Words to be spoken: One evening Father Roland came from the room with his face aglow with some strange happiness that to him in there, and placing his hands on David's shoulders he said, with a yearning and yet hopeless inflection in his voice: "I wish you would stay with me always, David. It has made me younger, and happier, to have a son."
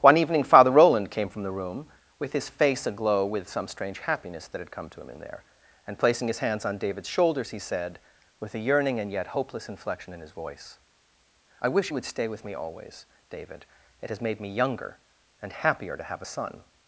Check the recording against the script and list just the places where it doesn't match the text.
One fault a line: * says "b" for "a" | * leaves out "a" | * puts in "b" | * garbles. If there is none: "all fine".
* puts in "had come"